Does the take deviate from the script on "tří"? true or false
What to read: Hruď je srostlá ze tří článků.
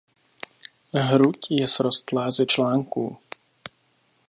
true